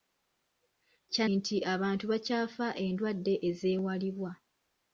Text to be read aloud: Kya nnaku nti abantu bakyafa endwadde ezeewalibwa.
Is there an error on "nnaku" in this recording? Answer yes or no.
yes